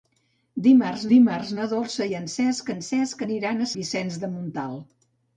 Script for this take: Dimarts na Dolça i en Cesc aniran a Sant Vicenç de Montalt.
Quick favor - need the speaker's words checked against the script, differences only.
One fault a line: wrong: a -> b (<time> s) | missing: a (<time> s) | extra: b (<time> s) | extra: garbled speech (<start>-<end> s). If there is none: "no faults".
extra: dimarts (1.1 s)
extra: en Cesc (2.7 s)
missing: Sant (3.7 s)